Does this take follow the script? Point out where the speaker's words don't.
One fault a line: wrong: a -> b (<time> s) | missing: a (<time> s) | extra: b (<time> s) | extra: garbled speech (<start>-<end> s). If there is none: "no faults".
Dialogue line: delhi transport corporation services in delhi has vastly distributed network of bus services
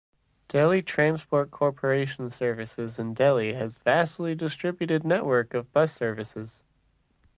no faults